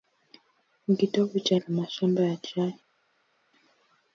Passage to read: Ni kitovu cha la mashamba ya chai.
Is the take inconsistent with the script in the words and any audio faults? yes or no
no